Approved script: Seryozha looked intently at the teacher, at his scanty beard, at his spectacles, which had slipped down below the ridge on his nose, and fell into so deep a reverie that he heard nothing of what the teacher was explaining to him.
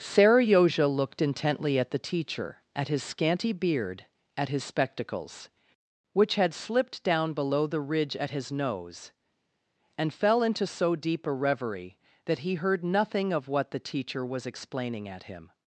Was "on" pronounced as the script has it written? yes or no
no